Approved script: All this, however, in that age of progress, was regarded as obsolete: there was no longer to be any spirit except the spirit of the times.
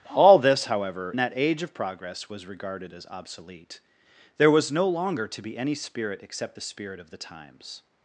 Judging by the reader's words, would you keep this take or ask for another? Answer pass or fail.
fail